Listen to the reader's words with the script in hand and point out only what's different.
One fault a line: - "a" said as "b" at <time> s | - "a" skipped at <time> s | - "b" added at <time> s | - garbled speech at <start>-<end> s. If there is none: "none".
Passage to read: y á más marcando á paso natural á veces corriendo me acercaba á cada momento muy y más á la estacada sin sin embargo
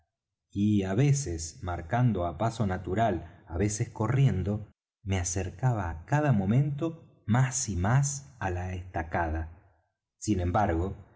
- "más" said as "veces" at 0.9 s
- "muy" said as "más" at 7.2 s
- "sin" skipped at 10.4 s